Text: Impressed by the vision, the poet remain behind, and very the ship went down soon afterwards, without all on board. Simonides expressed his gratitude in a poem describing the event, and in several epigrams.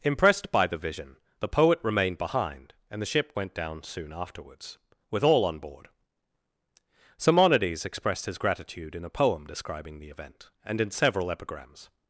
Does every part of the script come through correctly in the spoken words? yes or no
no